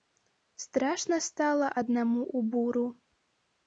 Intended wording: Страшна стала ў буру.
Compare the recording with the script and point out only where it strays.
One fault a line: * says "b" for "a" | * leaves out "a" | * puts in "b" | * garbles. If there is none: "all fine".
* puts in "аднаму"